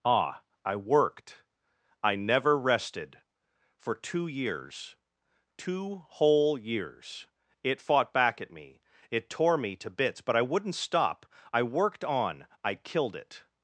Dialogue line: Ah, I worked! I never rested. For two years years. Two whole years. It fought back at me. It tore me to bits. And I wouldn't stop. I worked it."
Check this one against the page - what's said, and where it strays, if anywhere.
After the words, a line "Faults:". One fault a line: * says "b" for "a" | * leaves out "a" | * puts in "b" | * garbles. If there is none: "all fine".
Ah, I worked! I never rested. For two years. Two whole years. It fought back at me. It tore me to bits. But I wouldn't stop. I worked on, I killed it."
Faults:
* leaves out "years"
* says "But" for "And"
* puts in "on I killed"